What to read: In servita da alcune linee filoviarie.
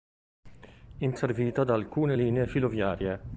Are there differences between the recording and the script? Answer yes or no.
no